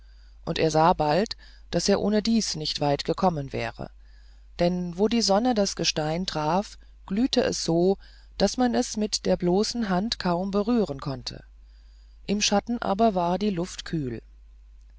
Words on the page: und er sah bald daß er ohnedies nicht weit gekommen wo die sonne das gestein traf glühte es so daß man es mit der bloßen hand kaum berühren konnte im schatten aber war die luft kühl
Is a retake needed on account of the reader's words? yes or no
yes